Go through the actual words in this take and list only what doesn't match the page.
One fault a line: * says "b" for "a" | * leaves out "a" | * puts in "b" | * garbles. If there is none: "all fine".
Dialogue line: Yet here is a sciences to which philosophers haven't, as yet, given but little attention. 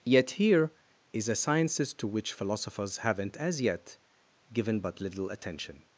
all fine